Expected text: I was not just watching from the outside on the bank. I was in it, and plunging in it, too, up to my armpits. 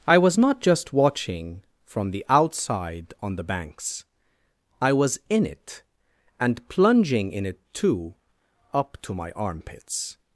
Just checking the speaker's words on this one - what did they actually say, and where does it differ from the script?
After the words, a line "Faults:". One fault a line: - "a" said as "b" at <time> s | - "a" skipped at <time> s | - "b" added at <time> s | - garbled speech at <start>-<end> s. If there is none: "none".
I was not just watching from the outside on the banks. I was in it, and plunging in it, too, up to my armpits.
Faults:
- "bank" said as "banks" at 3.4 s